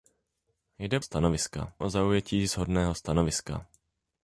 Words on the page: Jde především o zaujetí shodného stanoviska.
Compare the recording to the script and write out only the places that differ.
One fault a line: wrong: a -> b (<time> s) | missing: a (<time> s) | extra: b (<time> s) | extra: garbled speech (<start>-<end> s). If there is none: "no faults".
wrong: především -> stanoviska (1.0 s)